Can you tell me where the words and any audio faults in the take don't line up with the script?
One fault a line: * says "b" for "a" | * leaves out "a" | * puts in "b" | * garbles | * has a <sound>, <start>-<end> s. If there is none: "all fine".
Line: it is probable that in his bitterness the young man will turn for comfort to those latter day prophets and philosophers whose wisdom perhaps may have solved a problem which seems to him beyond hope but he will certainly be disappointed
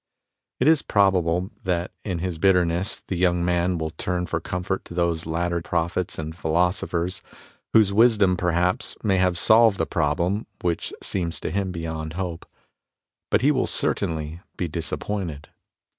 * leaves out "day"